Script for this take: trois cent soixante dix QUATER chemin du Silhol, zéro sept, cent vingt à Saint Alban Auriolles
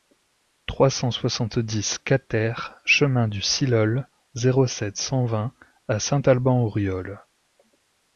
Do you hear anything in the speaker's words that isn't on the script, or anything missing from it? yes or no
no